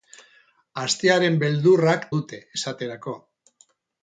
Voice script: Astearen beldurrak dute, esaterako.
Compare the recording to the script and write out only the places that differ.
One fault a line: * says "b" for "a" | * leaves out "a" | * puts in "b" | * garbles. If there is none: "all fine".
all fine